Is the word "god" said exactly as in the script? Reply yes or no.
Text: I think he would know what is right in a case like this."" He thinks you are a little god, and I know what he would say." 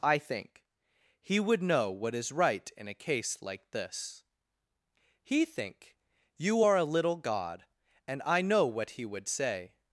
yes